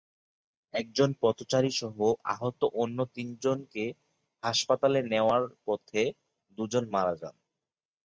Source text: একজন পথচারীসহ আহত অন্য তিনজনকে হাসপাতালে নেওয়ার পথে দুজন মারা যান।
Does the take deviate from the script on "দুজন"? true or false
false